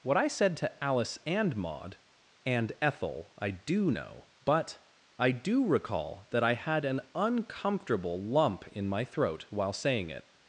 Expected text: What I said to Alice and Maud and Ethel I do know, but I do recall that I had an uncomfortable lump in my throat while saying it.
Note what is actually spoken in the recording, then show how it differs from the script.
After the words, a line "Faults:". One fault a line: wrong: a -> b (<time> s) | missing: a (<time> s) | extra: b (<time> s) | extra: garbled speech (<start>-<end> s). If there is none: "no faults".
What I said to Alice and Maud and Ethel I do know, but I do recall that I had an uncomfortable lump in my throat while saying it.
Faults:
no faults